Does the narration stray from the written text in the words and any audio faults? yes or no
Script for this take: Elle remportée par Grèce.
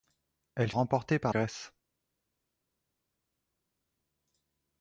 no